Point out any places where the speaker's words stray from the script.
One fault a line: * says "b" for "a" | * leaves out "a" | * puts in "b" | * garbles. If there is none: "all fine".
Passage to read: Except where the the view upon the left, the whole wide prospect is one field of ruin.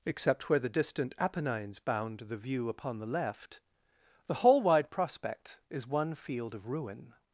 * puts in "distant Apennines bound"